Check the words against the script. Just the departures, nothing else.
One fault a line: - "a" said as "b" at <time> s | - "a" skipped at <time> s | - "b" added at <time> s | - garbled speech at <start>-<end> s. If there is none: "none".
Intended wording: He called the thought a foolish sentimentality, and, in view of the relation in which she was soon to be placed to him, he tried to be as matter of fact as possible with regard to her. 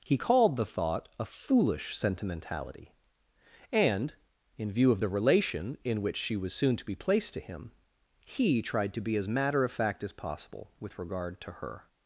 none